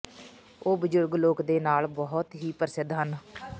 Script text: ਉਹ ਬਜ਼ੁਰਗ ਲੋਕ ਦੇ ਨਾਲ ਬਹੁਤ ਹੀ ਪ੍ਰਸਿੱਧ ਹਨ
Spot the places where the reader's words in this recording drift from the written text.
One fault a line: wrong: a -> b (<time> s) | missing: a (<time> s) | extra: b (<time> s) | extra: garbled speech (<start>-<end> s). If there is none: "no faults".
no faults